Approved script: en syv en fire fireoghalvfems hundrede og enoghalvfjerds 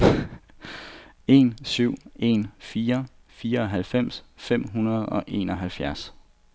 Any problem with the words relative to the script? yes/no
yes